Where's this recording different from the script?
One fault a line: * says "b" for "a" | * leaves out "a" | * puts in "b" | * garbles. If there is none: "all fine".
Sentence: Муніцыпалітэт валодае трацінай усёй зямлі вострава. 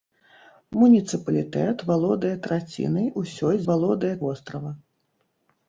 * says "валодае" for "зямлі"